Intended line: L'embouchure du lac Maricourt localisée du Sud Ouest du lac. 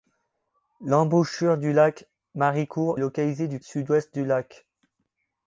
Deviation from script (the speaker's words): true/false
false